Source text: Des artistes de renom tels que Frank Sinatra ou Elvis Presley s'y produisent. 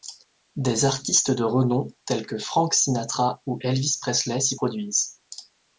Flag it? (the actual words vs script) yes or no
no